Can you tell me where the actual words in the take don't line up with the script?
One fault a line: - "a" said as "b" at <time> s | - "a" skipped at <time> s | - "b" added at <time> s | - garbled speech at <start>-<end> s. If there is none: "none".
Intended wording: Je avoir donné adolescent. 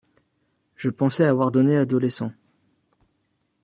- "pensais" added at 0.9 s